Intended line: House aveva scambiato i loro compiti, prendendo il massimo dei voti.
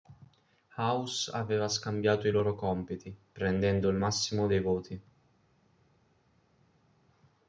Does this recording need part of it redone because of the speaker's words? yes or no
no